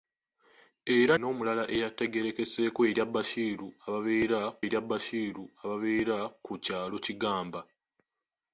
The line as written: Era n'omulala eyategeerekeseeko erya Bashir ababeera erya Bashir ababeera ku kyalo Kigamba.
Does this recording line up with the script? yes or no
yes